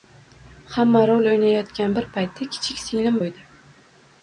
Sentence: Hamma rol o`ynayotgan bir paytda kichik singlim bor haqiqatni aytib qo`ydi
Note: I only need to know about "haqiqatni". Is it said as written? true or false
false